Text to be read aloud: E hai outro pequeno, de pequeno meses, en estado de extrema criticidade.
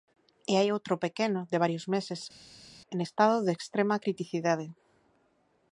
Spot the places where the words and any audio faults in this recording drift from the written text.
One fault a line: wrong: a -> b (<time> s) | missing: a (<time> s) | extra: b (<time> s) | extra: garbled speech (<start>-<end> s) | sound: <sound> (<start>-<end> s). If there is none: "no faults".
wrong: pequeno -> varios (1.6 s)